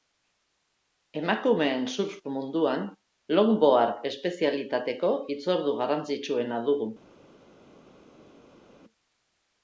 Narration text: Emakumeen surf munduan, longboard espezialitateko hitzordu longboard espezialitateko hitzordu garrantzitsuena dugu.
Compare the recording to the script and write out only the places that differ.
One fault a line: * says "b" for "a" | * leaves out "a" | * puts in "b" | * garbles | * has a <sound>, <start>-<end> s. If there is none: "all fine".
* leaves out "longboard espezialitateko hitzordu"